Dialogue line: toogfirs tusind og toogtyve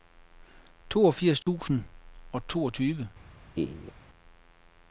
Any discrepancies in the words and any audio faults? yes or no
yes